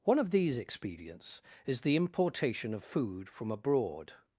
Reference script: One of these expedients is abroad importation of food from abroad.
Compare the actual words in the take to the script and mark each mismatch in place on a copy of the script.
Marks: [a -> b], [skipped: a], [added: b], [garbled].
One of these expedients is [abroad -> the] importation of food from abroad.